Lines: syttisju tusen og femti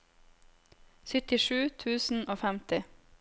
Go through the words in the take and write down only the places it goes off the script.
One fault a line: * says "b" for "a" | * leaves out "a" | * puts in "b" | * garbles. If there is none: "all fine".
all fine